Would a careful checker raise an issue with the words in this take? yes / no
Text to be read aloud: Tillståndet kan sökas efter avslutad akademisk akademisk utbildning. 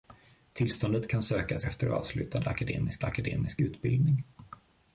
no